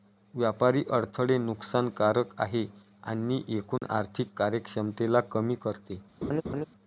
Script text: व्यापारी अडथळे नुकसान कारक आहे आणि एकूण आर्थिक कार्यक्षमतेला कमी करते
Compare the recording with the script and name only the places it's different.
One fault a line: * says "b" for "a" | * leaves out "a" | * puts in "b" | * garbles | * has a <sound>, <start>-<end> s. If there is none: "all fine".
* has a dropout, 3.8-3.8 s
* has a laugh, 6.2-6.7 s